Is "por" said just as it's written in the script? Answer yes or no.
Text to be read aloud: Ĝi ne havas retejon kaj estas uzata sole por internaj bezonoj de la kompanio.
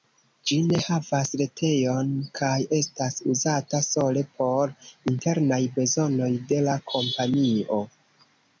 yes